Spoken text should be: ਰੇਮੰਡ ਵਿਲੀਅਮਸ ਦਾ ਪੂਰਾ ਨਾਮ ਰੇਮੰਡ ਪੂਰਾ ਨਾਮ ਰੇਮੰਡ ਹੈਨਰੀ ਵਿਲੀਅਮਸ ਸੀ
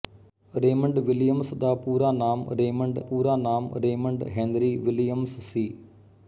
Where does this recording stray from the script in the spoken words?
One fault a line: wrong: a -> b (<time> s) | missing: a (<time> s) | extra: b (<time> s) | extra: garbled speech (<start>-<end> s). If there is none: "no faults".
no faults